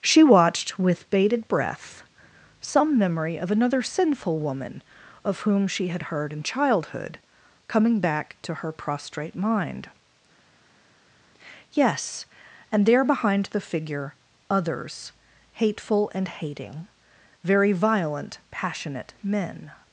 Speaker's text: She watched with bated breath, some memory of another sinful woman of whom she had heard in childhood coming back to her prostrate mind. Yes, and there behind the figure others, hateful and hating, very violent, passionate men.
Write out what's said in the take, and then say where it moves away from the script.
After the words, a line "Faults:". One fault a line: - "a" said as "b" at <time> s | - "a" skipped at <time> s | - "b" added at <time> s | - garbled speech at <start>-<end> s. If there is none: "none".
She watched with bated breath, some memory of another sinful woman of whom she had heard in childhood coming back to her prostrate mind. Yes, and there behind the figure others, hateful and hating, very violent, passionate men.
Faults:
none